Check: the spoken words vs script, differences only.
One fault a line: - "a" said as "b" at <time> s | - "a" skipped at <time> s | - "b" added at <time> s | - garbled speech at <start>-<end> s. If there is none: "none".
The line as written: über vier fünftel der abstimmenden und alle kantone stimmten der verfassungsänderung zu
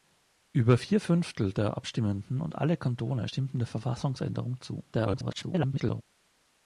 - garbled speech at 4.9-6.0 s